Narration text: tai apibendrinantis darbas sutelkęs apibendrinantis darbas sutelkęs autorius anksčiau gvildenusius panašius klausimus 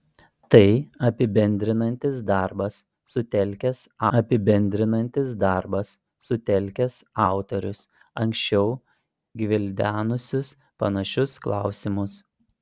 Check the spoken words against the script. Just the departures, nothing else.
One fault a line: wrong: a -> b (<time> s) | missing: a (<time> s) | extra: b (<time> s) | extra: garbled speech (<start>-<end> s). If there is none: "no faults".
no faults